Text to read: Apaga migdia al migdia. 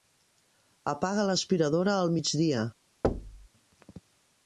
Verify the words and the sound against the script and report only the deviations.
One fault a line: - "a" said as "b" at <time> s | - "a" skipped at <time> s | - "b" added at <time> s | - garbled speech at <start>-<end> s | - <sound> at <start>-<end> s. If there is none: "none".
- "migdia" said as "l'aspiradora" at 1.3 s
- thud at 3.0-3.5 s